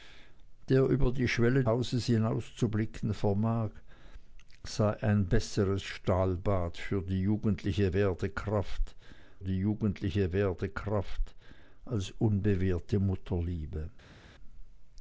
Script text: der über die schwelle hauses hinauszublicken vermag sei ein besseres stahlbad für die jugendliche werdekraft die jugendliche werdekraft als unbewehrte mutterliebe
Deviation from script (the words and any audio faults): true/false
false